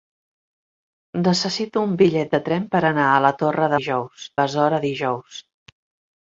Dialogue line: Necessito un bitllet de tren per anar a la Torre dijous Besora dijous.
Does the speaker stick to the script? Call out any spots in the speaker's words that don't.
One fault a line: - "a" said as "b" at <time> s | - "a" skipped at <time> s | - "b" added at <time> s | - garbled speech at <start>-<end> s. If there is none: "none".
none